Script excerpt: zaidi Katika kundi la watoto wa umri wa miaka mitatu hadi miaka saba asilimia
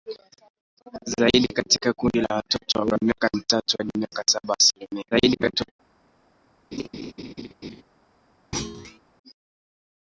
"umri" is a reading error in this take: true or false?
true